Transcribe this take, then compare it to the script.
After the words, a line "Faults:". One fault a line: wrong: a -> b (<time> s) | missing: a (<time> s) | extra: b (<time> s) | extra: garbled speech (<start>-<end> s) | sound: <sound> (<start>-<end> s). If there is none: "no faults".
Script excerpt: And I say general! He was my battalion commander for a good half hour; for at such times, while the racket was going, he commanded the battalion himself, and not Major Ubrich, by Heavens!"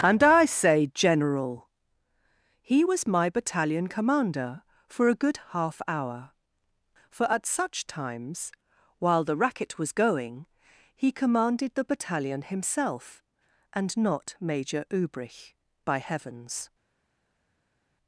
And I say general! He was my battalion commander for a good half hour; for at such times, while the racket was going, he commanded the battalion himself, and not Major Ubrich, by Heavens!"
Faults:
no faults